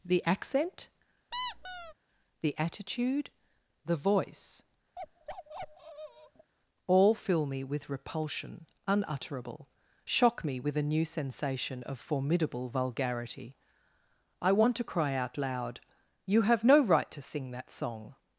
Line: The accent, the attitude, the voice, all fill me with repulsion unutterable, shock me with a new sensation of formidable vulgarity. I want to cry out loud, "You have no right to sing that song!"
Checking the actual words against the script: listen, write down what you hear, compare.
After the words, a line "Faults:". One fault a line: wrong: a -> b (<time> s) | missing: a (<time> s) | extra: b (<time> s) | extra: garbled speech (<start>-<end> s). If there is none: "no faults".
The accent, the attitude, the voice, all fill me with repulsion unutterable, shock me with a new sensation of formidable vulgarity. I want to cry out loud, "You have no right to sing that song!"
Faults:
no faults